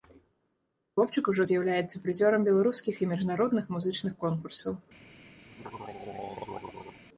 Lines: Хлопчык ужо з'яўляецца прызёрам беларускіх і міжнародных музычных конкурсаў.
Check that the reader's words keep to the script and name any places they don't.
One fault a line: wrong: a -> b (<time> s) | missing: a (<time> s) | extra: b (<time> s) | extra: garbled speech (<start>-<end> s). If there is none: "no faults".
no faults